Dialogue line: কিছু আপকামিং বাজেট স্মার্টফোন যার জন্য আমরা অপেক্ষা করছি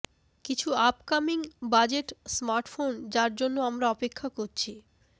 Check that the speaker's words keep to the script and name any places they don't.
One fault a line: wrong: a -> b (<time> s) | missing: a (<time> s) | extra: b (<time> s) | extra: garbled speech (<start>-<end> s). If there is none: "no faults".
no faults